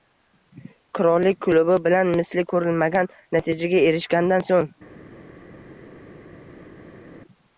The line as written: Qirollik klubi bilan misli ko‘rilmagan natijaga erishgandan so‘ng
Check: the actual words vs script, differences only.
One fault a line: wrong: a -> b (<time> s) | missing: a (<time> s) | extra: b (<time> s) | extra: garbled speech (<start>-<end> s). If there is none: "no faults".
no faults